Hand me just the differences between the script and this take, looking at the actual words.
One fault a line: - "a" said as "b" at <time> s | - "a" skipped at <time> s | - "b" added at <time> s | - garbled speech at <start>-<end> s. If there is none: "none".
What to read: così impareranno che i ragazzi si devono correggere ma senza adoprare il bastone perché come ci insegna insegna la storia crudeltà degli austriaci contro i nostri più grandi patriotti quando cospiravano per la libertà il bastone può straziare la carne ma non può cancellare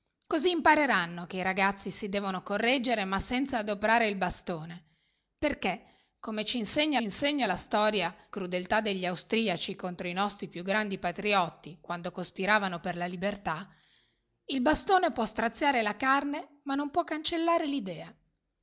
none